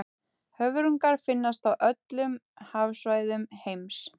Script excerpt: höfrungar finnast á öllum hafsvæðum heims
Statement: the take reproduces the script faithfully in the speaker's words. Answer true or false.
true